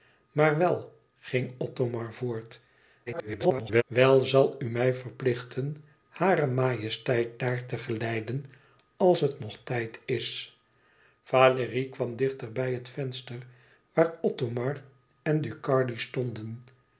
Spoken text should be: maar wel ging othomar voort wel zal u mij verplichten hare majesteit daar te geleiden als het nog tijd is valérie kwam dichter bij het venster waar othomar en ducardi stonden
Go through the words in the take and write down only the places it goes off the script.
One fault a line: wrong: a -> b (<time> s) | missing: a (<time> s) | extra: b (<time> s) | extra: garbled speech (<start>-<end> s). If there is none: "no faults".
extra: garbled speech (3.1-3.8 s)